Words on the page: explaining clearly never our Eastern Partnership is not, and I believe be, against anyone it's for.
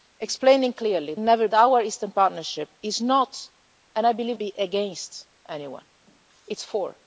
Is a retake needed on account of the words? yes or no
no